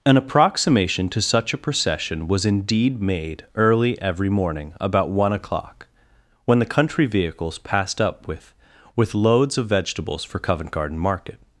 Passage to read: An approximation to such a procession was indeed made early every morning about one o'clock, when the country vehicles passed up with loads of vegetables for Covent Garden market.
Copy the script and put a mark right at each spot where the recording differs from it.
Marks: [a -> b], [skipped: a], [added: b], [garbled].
An approximation to such a procession was indeed made early every morning about one o'clock, when the country vehicles passed up with [added: with] loads of vegetables for Covent Garden market.